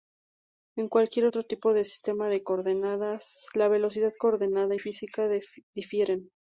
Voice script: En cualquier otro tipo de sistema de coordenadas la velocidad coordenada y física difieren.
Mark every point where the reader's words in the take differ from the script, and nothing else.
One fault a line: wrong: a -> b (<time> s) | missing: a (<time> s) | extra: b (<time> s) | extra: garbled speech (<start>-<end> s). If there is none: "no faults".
no faults